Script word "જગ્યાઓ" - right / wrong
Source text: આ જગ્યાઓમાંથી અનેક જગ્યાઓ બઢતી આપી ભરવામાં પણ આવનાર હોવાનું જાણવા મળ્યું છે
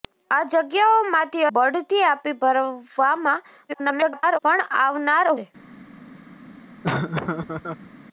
wrong